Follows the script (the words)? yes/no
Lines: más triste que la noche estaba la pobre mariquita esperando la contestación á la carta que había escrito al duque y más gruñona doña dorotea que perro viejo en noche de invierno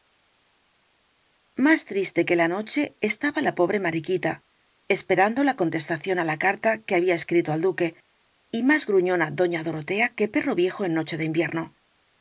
yes